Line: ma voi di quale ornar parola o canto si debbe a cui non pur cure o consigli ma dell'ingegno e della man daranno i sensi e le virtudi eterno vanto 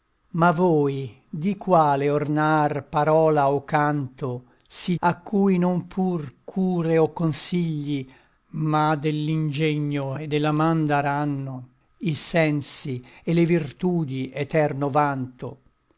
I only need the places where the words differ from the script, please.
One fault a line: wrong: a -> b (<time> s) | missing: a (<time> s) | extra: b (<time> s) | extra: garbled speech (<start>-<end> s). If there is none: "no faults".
missing: debbe (5.0 s)